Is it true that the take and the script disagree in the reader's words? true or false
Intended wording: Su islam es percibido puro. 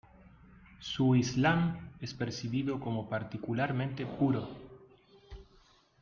true